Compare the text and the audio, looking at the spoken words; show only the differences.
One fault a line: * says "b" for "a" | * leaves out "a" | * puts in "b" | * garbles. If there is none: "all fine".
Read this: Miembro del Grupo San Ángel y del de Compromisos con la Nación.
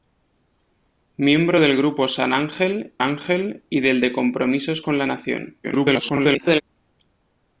* puts in "Ángel"
* garbles